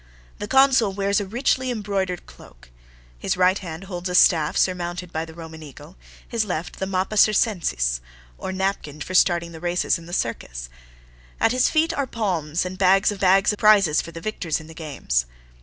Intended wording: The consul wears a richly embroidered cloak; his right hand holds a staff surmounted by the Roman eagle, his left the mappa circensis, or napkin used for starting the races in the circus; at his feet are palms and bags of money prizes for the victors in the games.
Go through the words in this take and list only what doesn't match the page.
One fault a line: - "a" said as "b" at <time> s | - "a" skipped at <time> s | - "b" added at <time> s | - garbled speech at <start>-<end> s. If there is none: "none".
- "used" skipped at 9.0 s
- "money" said as "bags" at 13.2 s